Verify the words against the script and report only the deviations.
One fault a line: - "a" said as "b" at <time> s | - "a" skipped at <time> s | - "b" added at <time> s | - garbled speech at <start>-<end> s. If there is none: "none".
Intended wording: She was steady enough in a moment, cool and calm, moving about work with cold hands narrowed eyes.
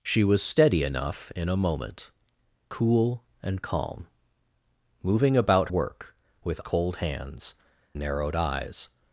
none